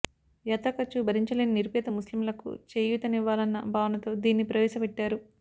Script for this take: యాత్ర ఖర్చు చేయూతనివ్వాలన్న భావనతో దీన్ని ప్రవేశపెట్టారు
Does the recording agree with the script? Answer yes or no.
no